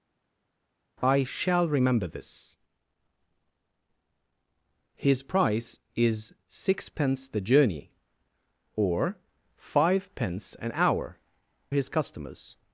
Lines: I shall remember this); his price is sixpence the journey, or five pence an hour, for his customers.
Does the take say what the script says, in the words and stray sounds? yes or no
no